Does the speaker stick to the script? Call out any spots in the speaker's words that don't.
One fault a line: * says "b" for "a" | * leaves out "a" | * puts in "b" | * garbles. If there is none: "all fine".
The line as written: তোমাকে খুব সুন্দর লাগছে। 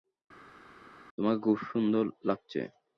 all fine